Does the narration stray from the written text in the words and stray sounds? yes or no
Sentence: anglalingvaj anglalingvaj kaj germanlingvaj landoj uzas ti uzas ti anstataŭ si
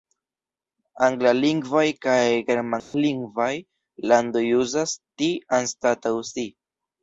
yes